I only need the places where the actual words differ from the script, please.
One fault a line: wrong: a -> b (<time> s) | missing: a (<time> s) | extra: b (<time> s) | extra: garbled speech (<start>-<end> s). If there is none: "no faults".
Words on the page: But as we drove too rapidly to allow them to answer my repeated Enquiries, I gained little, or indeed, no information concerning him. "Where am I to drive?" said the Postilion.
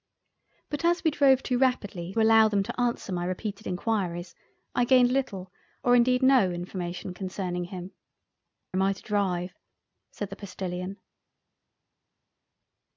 missing: to (2.1 s)
missing: Where (7.9 s)